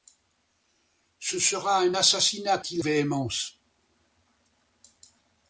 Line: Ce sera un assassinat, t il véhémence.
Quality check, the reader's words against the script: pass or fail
pass